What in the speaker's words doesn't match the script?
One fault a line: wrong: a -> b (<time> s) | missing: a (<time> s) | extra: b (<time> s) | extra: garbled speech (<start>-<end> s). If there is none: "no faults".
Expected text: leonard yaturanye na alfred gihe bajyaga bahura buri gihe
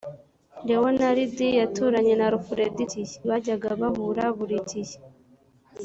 no faults